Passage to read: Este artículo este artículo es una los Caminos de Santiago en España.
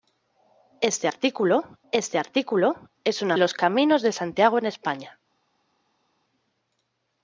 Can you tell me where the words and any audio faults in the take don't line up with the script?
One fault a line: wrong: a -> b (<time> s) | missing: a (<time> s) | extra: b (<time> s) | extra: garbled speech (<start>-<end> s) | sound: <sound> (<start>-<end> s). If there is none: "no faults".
no faults